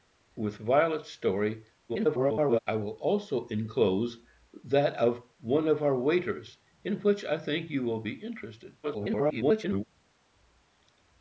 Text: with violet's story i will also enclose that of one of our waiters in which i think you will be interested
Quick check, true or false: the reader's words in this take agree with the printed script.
false